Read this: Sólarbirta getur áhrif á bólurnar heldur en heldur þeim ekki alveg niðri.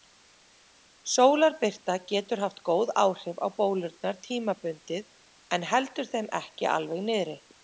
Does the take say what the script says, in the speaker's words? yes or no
no